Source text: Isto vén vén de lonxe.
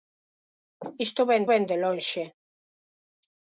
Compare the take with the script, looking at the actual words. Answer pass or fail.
pass